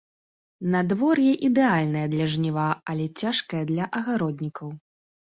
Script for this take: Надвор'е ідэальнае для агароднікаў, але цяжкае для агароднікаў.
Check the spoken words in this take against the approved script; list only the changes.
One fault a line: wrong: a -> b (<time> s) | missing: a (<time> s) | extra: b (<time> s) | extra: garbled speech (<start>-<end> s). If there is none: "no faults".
wrong: агароднікаў -> жніва (2.4 s)